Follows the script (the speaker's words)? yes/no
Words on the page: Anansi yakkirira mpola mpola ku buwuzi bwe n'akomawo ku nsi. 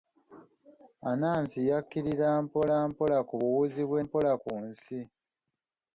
no